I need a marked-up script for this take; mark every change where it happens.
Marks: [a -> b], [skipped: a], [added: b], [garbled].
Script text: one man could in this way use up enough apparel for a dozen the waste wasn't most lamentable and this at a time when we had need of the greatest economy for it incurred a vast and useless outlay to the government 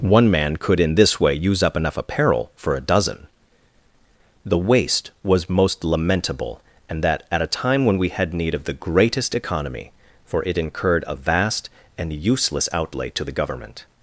one man could in this way use up enough apparel for a dozen the waste [wasn't -> was] most lamentable and [this -> that] at a time when we had need of the greatest economy for it incurred a vast and useless outlay to the government